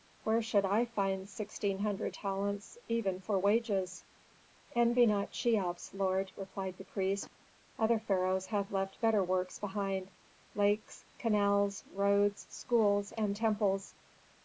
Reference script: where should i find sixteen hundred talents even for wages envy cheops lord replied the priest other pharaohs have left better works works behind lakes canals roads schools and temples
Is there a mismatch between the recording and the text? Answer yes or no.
yes